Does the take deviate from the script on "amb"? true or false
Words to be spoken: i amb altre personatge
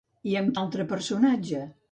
false